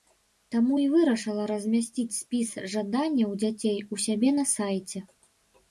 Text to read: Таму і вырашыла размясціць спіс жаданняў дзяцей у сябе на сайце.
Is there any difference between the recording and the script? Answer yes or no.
no